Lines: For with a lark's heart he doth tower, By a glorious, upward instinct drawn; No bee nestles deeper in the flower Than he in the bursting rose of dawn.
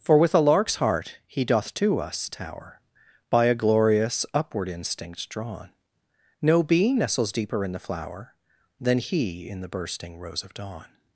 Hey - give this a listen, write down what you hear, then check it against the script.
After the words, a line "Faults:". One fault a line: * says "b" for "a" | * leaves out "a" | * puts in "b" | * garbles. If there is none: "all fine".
For with a lark's heart he doth to us tower, By a glorious, upward instinct drawn; No bee nestles deeper in the flower Than he in the bursting rose of dawn.
Faults:
* puts in "to us"